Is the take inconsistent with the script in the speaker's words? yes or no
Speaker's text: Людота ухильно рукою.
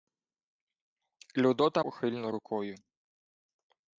no